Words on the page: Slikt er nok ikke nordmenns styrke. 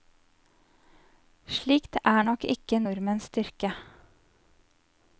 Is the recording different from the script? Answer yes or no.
no